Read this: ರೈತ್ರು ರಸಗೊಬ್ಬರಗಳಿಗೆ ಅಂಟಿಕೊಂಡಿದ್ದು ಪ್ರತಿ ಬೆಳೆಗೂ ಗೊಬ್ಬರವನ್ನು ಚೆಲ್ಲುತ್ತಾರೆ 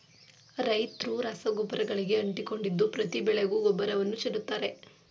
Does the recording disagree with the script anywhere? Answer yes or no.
no